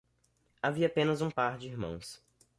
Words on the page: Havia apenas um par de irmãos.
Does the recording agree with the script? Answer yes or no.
yes